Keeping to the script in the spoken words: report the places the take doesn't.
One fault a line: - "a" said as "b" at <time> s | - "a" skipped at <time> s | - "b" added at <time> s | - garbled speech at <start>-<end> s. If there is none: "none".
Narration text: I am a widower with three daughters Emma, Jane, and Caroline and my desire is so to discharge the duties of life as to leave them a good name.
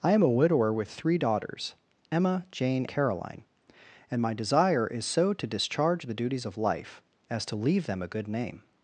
- "and" skipped at 2.9 s